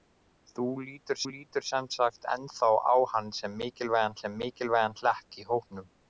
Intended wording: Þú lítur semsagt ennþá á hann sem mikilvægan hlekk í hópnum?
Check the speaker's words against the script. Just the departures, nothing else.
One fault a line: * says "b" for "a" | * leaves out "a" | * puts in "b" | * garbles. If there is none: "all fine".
* puts in "lítur"
* puts in "sem mikilvægan"